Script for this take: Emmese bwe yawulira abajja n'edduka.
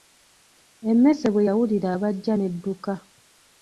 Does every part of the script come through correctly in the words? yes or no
yes